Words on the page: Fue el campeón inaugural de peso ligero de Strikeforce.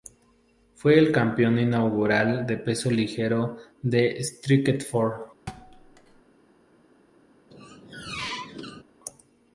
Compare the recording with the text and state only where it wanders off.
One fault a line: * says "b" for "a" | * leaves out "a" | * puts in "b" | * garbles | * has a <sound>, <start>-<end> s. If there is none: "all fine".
* has a thud, 5.5-6.2 s
* has a squeak, 7.5-8.8 s